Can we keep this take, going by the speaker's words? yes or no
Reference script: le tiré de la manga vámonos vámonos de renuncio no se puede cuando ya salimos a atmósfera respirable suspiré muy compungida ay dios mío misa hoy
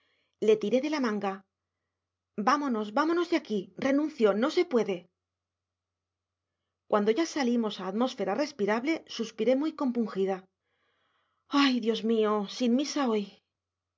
no